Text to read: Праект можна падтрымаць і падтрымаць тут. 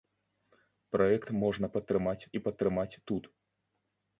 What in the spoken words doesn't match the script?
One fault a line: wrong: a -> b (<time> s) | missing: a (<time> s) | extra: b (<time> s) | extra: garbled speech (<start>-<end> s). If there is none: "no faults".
no faults